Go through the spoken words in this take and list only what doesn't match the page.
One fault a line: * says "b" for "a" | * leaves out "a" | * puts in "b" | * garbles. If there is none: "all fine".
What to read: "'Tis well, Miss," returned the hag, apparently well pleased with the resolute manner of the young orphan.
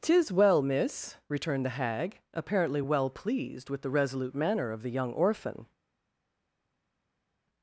all fine